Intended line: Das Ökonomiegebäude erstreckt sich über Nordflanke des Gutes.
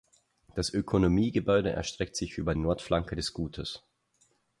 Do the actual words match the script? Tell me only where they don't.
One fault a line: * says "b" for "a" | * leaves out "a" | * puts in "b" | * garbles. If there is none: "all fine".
all fine